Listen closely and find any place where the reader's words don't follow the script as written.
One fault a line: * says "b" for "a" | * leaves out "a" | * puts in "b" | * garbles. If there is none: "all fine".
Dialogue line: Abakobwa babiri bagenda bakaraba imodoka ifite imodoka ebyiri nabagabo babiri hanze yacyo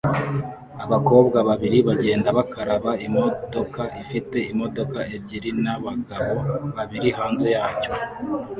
all fine